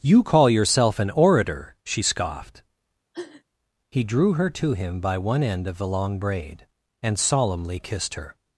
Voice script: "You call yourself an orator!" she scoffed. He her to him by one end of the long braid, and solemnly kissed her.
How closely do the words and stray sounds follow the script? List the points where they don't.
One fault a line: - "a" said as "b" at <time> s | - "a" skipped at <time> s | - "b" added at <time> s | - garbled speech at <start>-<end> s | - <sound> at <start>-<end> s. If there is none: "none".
- sniff at 3.1-3.4 s
- "drew" added at 4.0 s